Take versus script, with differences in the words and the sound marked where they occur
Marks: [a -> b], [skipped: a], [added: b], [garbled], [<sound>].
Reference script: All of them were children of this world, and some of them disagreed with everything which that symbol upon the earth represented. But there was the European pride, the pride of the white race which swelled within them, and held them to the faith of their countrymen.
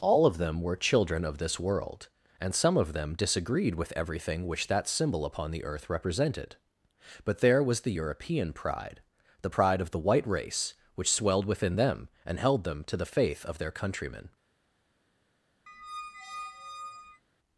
All of them were children of this world, and some of them disagreed with everything which that symbol upon the earth represented. But there was the European pride, the pride of the white race which swelled within them, and held them to the faith of their countrymen. [squeak]